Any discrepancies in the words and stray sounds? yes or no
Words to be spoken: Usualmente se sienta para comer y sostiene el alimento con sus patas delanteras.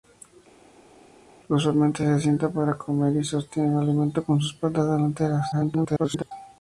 yes